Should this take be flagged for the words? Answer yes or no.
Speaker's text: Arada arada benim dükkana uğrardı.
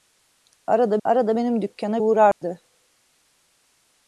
no